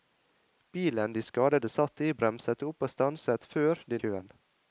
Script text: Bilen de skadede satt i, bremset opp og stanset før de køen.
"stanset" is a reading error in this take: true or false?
false